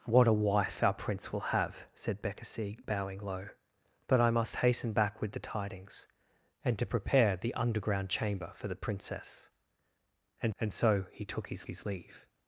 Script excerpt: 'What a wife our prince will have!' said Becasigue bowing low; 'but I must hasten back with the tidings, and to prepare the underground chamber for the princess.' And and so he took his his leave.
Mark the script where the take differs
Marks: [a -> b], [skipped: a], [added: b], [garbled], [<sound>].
'What a wife our prince will have!' said Becasigue bowing low; 'but I must hasten back with the tidings, and to prepare the underground chamber for the princess.' And and so he took his his leave.